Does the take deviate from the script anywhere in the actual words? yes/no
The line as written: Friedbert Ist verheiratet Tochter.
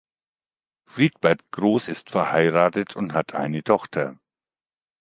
yes